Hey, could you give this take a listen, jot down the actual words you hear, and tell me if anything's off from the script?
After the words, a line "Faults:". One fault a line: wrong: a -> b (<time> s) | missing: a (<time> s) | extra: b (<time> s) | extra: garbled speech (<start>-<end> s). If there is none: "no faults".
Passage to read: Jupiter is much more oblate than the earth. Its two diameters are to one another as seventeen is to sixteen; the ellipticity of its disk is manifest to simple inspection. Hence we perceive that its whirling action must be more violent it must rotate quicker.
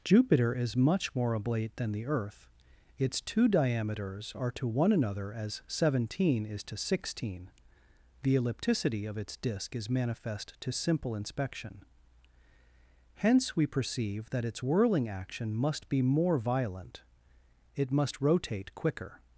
Jupiter is much more oblate than the earth. Its two diameters are to one another as seventeen is to sixteen; the ellipticity of its disk is manifest to simple inspection. Hence we perceive that its whirling action must be more violent it must rotate quicker.
Faults:
no faults